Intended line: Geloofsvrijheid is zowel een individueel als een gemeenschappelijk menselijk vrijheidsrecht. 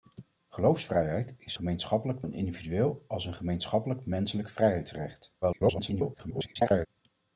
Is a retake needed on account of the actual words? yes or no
yes